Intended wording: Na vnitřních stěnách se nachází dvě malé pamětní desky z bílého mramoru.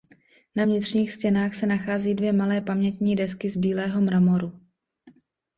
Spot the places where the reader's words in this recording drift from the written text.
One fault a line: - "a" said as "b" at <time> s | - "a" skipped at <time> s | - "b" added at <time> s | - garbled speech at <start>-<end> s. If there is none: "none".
none